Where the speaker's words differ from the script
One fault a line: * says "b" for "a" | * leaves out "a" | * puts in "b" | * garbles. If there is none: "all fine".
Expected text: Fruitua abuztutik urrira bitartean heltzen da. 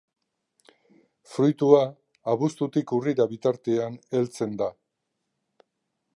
all fine